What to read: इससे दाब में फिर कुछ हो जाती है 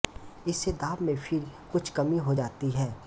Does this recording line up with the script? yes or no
no